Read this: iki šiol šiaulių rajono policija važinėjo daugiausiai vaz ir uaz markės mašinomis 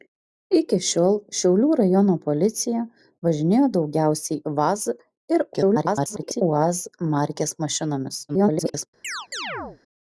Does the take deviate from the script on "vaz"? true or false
false